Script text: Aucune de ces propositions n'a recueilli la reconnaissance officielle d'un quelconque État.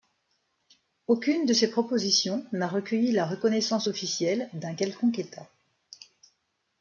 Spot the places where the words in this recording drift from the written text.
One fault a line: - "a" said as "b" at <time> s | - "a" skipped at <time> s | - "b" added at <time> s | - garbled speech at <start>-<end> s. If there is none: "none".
none